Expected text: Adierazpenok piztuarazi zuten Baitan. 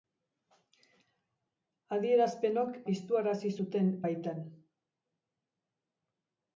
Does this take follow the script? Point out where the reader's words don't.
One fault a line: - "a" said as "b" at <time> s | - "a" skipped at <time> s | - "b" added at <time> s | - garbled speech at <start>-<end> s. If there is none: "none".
none